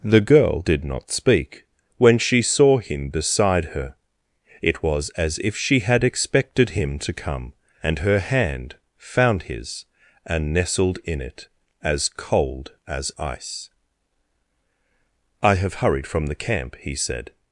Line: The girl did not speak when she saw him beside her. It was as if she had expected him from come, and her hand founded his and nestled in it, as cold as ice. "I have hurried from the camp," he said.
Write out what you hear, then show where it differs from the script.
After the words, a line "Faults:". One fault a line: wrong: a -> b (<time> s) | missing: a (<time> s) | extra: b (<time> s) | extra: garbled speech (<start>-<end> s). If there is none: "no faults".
The girl did not speak when she saw him beside her. It was as if she had expected him to come, and her hand found his and nestled in it, as cold as ice. "I have hurried from the camp," he said.
Faults:
wrong: from -> to (7.0 s)
wrong: founded -> found (9.0 s)